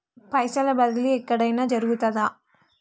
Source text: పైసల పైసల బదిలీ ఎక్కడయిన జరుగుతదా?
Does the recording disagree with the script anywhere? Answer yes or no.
yes